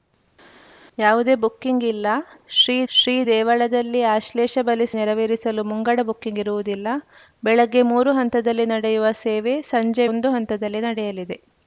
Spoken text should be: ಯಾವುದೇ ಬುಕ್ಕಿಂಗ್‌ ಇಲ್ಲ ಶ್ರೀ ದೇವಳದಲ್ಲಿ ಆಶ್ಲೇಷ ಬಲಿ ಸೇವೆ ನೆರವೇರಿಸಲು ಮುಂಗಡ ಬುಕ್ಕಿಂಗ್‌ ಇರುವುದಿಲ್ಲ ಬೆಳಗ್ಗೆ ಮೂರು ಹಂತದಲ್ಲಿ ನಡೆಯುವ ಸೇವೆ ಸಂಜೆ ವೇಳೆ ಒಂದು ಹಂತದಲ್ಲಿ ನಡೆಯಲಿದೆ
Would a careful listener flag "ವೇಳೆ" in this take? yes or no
yes